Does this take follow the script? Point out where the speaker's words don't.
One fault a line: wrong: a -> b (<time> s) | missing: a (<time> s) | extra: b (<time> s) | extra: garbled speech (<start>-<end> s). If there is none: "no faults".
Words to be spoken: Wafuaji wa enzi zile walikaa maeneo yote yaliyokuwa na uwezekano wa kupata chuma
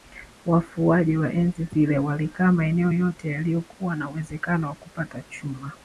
no faults